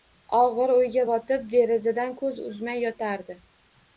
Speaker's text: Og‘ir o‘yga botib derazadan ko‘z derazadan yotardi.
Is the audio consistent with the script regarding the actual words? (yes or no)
no